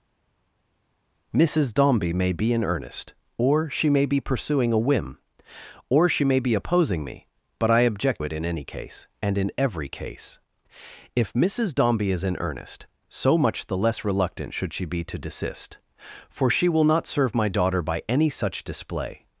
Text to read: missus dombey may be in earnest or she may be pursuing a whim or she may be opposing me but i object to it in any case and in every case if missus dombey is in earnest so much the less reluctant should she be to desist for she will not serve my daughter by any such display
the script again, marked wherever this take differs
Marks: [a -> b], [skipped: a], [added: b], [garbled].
missus dombey may be in earnest or she may be pursuing a whim or she may be opposing me but i object [skipped: to] it in any case and in every case if missus dombey is in earnest so much the less reluctant should she be to desist for she will not serve my daughter by any such display